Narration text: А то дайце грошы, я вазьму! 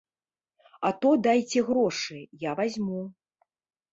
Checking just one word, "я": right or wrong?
right